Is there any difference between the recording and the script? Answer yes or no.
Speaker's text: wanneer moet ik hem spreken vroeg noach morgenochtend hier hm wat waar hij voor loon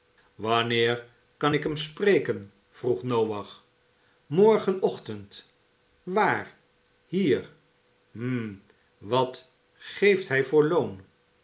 yes